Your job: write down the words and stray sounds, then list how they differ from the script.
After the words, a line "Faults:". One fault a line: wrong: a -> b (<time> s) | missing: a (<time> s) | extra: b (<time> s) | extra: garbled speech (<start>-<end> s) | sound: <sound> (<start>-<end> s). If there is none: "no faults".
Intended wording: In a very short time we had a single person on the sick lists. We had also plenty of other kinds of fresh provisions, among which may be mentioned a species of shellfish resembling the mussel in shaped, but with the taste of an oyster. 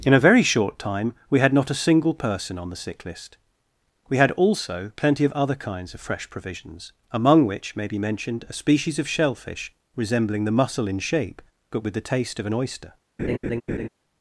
In a very short time we had not a single person on the sick list. We had also plenty of other kinds of fresh provisions, among which may be mentioned a species of shellfish resembling the mussel in shape, but with the taste of an oyster.
Faults:
extra: not (1.5 s)
wrong: lists -> list (3.0 s)
wrong: shaped -> shape (11.0 s)
sound: laugh (13.2-13.9 s)